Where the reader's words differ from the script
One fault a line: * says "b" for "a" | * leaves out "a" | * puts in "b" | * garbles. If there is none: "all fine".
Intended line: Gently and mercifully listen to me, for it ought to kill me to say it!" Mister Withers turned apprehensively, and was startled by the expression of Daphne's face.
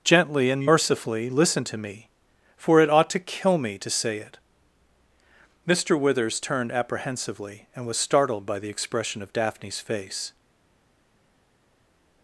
all fine